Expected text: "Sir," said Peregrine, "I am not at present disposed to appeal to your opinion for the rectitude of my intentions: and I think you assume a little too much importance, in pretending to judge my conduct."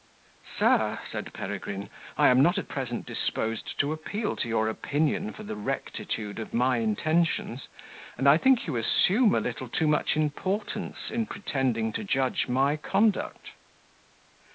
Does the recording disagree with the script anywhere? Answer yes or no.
no